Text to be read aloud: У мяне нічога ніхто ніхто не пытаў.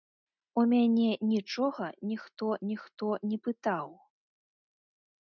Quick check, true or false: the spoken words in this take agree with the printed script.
true